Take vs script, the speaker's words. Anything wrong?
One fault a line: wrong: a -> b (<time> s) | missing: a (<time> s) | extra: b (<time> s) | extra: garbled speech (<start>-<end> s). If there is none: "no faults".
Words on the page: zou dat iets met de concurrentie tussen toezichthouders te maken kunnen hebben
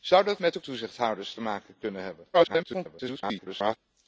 missing: iets (0.4 s)
missing: concurrentie tussen (0.6 s)
extra: garbled speech (2.3-3.8 s)